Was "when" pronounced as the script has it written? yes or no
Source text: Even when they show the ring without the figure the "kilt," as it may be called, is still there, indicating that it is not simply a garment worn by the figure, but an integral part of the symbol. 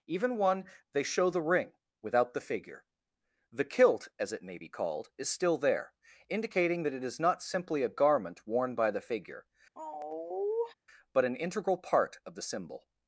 no